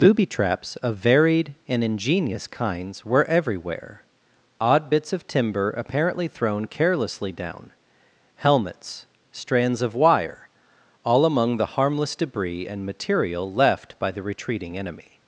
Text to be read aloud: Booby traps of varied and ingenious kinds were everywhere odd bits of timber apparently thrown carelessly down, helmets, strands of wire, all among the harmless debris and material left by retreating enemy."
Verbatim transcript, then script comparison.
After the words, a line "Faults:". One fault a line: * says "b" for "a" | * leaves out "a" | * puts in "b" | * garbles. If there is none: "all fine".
Booby traps of varied and ingenious kinds were everywhere odd bits of timber apparently thrown carelessly down, helmets, strands of wire, all among the harmless debris and material left by the retreating enemy."
Faults:
* puts in "the"